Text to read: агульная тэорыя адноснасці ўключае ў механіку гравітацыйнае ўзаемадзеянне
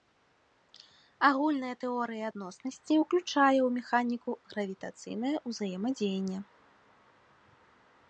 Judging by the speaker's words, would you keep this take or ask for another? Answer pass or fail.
pass